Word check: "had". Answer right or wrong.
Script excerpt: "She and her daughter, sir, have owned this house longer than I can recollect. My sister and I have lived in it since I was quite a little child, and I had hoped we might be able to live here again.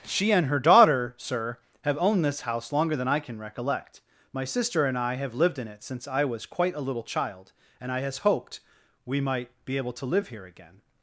wrong